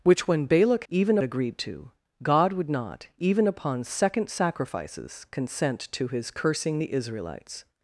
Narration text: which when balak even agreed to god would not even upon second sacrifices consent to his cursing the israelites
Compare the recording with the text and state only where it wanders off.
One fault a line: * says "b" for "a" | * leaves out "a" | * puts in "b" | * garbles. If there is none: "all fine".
all fine